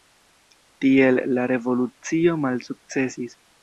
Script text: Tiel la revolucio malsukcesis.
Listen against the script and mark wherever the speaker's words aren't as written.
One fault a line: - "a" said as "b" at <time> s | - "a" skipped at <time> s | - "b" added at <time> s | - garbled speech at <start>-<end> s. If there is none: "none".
none